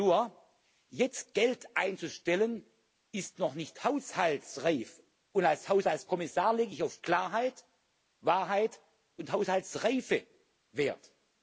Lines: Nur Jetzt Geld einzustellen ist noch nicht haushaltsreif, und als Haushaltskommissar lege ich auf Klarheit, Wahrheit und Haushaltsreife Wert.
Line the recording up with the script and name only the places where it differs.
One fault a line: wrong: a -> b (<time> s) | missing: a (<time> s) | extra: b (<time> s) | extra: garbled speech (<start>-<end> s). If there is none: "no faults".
no faults